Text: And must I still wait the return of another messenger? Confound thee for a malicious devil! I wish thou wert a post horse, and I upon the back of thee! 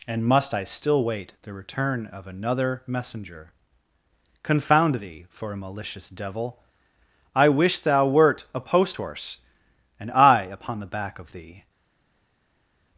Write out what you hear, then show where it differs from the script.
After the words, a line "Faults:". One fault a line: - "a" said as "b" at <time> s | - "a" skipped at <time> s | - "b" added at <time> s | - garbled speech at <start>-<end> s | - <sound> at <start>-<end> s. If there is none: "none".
And must I still wait the return of another messenger? Confound thee for a malicious devil! I wish thou wert a post horse, and I upon the back of thee!
Faults:
none